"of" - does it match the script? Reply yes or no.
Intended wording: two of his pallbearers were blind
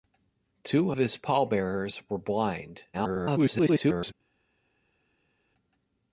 no